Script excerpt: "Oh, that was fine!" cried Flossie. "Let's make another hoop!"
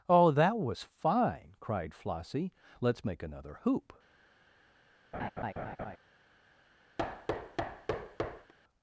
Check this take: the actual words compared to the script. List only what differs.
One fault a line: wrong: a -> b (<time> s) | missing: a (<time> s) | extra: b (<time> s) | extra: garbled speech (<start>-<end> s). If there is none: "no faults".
no faults